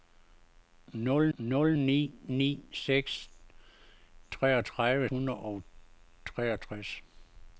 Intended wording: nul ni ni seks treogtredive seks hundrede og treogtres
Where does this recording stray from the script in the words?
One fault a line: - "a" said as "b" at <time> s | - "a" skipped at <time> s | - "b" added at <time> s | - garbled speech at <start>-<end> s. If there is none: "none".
- "nul" added at 1.4 s
- "seks" skipped at 5.1 s